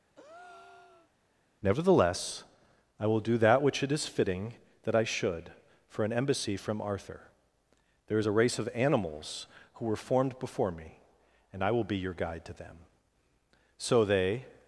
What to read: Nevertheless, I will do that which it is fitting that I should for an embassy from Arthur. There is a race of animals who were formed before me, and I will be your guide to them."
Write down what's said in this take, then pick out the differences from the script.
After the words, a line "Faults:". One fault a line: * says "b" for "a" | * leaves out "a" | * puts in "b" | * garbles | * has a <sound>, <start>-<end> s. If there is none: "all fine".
Nevertheless, I will do that which it is fitting that I should for an embassy from Arthur. There is a race of animals who were formed before me, and I will be your guide to them." So they
Faults:
* has a breath, 0.1-1.1 s
* puts in "So they"